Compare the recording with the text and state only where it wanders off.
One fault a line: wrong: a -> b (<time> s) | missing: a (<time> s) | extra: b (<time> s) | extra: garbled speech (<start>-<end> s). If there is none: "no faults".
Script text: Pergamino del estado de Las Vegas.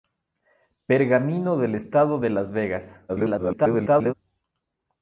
extra: garbled speech (3.1-4.1 s)